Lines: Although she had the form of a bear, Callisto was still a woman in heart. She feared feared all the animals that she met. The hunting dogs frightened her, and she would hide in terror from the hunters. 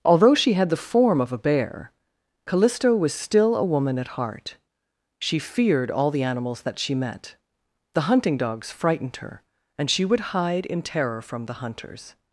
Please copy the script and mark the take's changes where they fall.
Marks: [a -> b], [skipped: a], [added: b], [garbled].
Although she had the form of a bear, Callisto was still a woman [in -> at] heart. She feared [skipped: feared] all the animals that she met. The hunting dogs frightened her, and she would hide in terror from the hunters.